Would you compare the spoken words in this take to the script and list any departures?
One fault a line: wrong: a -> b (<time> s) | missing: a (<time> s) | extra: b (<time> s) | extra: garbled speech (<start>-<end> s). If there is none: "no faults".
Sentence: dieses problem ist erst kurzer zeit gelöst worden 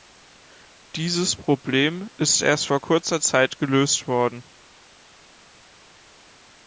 extra: vor (2.6 s)